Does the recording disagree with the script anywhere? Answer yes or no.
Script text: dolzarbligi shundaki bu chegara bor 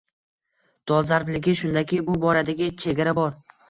yes